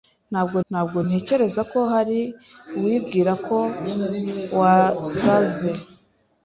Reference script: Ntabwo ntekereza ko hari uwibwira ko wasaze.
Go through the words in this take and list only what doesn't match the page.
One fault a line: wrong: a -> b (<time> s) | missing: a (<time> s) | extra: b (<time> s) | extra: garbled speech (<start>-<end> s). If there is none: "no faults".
extra: ntabwo (0.7 s)